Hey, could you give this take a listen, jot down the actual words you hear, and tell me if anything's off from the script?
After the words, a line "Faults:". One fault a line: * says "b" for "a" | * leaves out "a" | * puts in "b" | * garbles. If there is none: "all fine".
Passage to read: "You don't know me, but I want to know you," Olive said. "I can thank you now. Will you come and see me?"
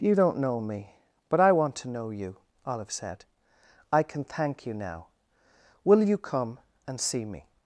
"You don't know me, but I want to know you," Olive said. "I can thank you now. Will you come and see me?"
Faults:
all fine